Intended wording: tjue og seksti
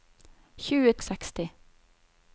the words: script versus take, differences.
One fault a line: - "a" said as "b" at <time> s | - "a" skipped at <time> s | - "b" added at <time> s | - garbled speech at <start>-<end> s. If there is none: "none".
none